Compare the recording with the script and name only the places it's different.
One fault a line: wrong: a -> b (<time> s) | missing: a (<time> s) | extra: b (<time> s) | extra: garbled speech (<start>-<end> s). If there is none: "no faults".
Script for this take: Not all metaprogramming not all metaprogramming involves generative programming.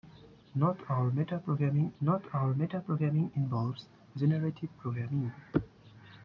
no faults